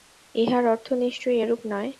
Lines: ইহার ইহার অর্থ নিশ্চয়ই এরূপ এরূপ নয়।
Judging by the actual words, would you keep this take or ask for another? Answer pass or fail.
fail